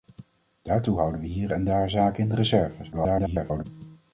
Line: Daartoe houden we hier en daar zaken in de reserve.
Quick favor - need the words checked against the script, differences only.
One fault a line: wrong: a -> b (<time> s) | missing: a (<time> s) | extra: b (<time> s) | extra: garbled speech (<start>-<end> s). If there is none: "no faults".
extra: garbled speech (2.9-3.7 s)